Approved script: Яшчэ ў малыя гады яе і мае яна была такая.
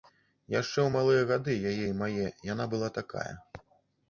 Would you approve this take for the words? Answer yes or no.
yes